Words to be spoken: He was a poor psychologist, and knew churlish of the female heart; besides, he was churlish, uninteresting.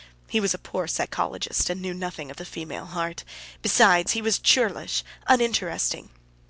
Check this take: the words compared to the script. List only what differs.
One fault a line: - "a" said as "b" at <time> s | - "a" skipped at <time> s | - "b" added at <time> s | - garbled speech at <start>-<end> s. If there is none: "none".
- "churlish" said as "nothing" at 1.9 s